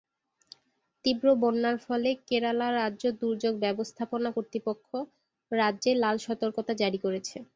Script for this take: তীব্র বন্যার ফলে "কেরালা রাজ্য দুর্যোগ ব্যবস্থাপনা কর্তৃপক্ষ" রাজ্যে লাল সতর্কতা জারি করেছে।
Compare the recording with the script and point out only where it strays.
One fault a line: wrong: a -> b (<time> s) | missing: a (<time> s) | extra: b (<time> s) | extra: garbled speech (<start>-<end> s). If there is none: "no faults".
no faults